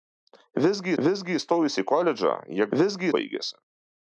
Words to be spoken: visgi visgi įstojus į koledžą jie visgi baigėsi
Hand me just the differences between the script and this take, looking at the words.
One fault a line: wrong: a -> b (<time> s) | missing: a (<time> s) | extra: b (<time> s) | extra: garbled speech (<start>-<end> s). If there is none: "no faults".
no faults